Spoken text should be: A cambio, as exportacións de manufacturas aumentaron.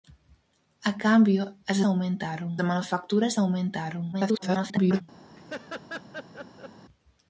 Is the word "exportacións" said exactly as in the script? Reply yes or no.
no